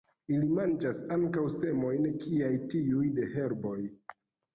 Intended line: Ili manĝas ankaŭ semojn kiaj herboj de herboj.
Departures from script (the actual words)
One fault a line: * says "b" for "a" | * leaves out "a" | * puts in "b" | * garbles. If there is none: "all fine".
* says "tiuj" for "herboj"